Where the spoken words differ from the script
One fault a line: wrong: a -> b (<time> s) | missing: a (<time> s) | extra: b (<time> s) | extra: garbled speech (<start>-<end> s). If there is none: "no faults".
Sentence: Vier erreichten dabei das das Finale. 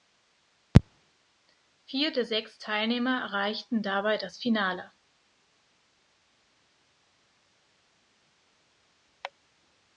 extra: der sechs Teilnehmer (2.1 s)
missing: das (4.4 s)